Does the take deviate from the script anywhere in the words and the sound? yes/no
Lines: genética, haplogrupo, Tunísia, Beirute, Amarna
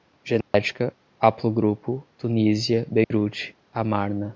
yes